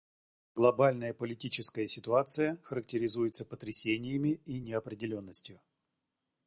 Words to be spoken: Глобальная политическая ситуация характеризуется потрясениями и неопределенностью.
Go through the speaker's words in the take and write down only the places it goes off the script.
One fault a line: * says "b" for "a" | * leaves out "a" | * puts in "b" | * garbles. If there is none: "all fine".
all fine